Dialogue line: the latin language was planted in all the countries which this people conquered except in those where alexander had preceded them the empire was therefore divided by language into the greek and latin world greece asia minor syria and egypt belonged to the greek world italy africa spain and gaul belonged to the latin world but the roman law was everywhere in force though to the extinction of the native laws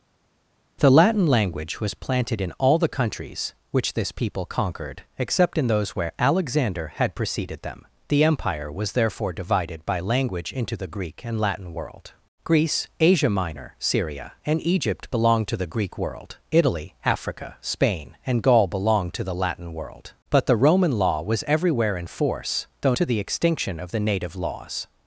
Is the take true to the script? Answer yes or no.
yes